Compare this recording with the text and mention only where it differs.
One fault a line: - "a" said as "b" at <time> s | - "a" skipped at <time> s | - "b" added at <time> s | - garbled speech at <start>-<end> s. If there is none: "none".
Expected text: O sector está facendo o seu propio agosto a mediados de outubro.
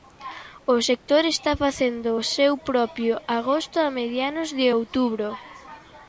none